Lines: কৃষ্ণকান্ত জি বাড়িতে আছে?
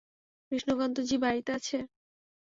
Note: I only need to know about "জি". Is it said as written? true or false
true